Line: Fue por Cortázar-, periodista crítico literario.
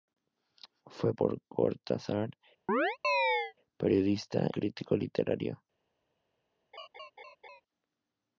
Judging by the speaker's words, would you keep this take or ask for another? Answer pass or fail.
pass